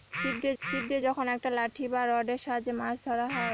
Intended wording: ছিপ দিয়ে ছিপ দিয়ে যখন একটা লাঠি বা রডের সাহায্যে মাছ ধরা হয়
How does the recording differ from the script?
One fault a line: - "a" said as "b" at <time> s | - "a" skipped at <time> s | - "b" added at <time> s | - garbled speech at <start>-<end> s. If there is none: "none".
none